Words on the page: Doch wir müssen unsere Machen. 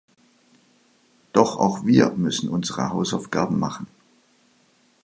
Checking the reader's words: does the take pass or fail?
fail